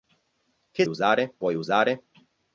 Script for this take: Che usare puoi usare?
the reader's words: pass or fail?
pass